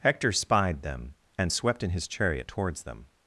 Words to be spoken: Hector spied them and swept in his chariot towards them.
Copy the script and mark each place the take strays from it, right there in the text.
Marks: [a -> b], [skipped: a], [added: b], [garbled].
Hector spied them and swept in his chariot towards them.